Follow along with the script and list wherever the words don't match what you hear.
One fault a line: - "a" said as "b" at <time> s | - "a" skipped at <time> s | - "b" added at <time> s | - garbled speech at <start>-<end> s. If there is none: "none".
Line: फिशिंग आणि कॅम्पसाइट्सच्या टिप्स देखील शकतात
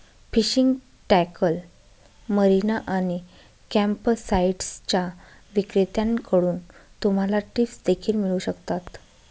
- "टॅकल मरीना" added at 1.1 s
- "विक्रेत्यांकडून तुम्हाला" added at 5.5 s
- "मिळू" added at 8.1 s